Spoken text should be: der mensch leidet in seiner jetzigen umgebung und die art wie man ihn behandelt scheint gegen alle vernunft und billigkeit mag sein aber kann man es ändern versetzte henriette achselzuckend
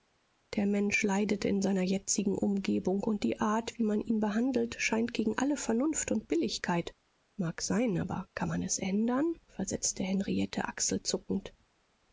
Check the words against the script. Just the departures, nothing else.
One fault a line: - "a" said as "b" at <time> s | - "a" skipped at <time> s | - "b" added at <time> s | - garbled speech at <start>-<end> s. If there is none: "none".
none